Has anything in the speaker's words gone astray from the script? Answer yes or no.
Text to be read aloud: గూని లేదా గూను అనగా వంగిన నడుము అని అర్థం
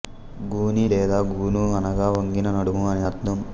no